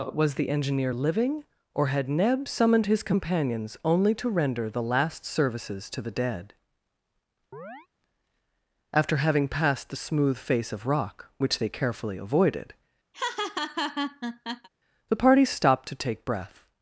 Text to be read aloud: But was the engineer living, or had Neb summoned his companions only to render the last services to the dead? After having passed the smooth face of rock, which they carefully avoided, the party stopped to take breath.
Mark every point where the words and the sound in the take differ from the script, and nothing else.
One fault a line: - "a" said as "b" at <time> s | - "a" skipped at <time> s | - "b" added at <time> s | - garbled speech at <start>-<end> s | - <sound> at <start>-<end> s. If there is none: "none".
- "But" skipped at 0.1 s
- chirp at 7.5-7.9 s
- laugh at 13.1-14.7 s